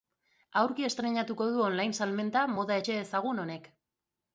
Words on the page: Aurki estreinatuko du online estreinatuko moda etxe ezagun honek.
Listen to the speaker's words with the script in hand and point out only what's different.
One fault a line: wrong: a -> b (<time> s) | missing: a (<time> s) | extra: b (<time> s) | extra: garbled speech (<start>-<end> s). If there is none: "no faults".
wrong: estreinatuko -> salmenta (2.0 s)